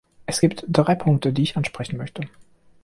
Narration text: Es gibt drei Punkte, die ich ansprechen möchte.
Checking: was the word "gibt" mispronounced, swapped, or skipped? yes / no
no